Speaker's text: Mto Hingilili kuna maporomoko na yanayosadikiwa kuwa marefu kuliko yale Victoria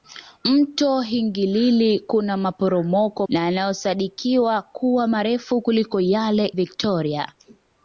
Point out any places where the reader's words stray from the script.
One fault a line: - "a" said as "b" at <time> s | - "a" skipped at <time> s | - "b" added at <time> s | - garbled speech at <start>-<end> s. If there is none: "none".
none